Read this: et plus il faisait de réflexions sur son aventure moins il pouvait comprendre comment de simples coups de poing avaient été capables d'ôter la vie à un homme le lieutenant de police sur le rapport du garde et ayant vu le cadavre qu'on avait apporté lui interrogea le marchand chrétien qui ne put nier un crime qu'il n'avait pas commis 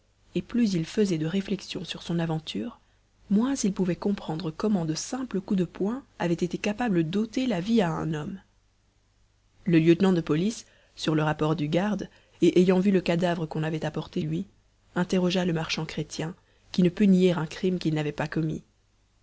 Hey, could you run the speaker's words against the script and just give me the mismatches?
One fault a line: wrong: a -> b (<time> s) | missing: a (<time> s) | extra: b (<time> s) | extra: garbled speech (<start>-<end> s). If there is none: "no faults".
no faults